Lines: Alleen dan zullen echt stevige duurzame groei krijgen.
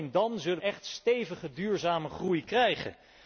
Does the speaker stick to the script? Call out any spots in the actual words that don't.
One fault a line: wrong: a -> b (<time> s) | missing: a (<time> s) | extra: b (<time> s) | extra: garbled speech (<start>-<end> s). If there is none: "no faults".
no faults